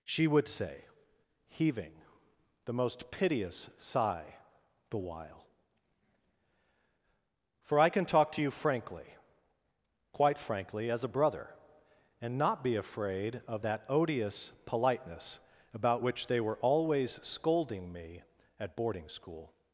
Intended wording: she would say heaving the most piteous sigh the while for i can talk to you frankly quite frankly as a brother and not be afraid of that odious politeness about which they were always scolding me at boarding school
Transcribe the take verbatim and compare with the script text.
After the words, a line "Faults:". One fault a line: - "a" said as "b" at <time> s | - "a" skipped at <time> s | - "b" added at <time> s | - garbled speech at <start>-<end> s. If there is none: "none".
she would say heaving the most piteous sigh the while for i can talk to you frankly quite frankly as a brother and not be afraid of that odious politeness about which they were always scolding me at boarding school
Faults:
none